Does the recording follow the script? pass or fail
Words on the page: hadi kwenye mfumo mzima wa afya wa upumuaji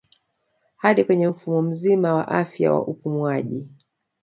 pass